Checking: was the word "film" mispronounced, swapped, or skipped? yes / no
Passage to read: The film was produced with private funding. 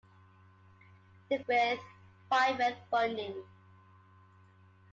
yes